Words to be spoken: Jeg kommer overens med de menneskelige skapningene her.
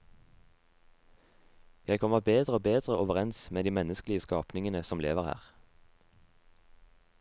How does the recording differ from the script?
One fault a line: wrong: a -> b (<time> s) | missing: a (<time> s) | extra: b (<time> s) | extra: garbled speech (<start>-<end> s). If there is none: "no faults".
extra: bedre og bedre (2.2 s)
extra: som lever (4.8 s)